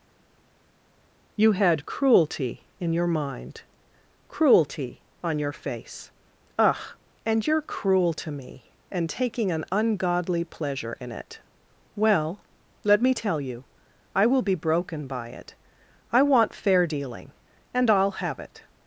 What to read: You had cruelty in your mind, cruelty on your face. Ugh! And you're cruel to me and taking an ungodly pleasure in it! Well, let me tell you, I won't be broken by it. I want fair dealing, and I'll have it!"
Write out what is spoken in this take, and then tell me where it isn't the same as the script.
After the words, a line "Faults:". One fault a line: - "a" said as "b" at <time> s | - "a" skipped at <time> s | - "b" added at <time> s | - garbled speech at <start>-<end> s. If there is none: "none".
You had cruelty in your mind, cruelty on your face. Ugh! And you're cruel to me and taking an ungodly pleasure in it! Well, let me tell you, I will be broken by it. I want fair dealing, and I'll have it!"
Faults:
- "won't" said as "will" at 14.2 s